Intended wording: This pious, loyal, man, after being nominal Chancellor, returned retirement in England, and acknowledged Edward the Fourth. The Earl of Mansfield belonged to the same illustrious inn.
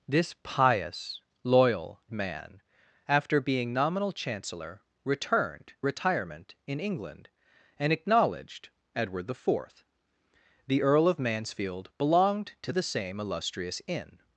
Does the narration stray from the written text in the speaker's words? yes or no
no